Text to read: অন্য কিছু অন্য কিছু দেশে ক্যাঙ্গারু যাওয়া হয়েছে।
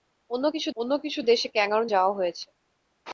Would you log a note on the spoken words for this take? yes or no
no